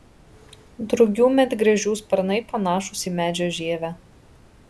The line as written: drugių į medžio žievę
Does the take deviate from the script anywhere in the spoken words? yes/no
yes